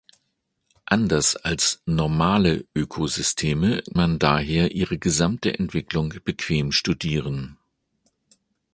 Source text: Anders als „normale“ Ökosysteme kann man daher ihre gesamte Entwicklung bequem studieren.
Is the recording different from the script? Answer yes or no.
yes